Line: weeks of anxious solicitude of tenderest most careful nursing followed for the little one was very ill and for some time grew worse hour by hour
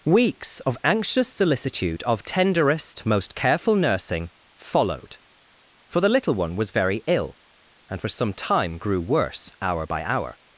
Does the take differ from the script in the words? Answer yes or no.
no